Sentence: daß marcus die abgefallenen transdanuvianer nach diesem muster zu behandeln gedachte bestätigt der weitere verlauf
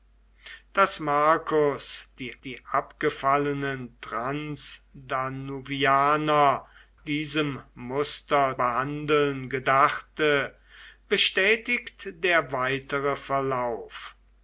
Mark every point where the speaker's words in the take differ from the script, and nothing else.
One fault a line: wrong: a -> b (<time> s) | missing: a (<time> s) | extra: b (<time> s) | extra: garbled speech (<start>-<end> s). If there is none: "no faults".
extra: die (2.4 s)
missing: nach (6.6 s)
missing: zu (8.6 s)